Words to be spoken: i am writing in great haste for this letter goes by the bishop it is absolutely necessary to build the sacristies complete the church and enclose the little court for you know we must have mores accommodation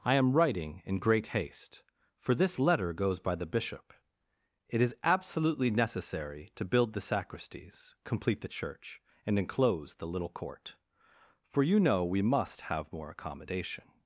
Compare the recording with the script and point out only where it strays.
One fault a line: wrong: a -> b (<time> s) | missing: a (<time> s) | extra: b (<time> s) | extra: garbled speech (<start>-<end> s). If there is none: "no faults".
wrong: mores -> more (12.9 s)